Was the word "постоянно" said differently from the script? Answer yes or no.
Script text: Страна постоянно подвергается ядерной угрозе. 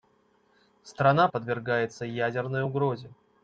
yes